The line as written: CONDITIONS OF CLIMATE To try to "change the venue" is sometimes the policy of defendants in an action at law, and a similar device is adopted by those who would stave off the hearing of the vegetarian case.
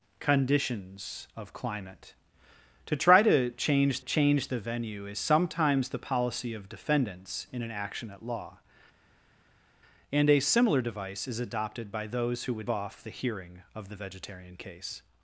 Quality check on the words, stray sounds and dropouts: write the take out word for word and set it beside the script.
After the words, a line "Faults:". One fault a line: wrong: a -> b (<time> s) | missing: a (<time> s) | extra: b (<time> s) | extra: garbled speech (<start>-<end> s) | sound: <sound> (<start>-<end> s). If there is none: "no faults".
CONDITIONS OF CLIMATE To try to "change change the venue" is sometimes the policy of defendants in an action at law, and a similar device is adopted by those who would off the hearing of the vegetarian case.
Faults:
extra: change (4.0 s)
missing: stave (12.7 s)